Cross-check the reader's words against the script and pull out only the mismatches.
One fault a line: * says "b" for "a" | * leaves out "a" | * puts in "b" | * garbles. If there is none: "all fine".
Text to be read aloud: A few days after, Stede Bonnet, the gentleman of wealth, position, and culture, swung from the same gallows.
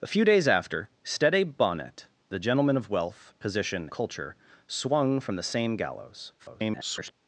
* leaves out "and"
* garbles